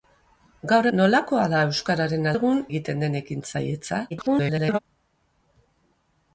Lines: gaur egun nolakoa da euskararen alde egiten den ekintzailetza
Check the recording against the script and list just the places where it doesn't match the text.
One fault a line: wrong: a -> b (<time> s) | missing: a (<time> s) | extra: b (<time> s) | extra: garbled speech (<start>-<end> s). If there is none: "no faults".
missing: egun (0.9 s)
wrong: alde -> egun (2.3 s)
extra: garbled speech (4.1-4.8 s)